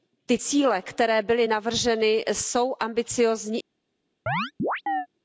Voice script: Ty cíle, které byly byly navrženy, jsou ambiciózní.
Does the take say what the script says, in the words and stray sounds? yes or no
no